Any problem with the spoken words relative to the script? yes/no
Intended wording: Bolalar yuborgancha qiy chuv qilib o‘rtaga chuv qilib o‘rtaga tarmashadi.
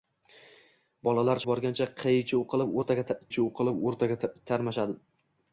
no